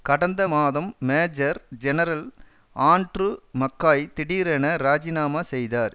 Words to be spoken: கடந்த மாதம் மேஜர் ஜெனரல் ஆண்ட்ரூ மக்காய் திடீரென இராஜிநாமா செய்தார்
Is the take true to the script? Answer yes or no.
yes